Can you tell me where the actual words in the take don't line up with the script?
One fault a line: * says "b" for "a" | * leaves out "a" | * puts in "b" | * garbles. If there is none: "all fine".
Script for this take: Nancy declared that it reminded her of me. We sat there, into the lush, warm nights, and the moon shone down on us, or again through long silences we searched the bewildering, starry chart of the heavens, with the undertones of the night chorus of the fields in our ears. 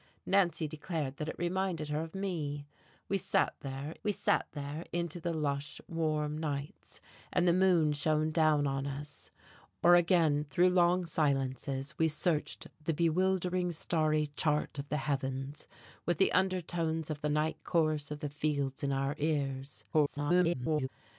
* puts in "we sat there"
* garbles